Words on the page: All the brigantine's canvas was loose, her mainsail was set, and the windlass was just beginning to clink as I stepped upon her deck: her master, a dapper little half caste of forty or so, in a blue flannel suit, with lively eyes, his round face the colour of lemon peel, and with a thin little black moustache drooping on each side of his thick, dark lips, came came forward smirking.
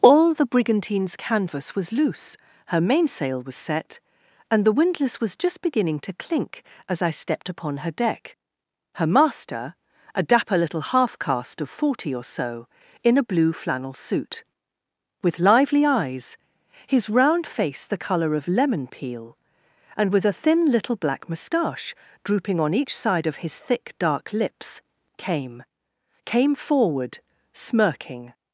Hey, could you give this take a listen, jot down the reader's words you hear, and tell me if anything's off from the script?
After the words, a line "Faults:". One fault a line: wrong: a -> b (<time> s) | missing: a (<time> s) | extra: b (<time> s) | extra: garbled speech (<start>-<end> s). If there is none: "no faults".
All the brigantine's canvas was loose, her mainsail was set, and the windlass was just beginning to clink as I stepped upon her deck: her master, a dapper little half caste of forty or so, in a blue flannel suit, with lively eyes, his round face the colour of lemon peel, and with a thin little black moustache drooping on each side of his thick, dark lips, came came forward smirking.
Faults:
no faults